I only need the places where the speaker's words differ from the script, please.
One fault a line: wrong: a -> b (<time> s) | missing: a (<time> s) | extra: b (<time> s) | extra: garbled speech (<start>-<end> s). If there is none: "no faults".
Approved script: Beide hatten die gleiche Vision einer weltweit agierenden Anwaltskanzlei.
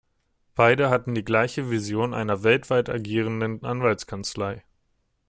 no faults